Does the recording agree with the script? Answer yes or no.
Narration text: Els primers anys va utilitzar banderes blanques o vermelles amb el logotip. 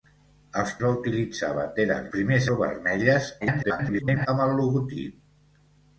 no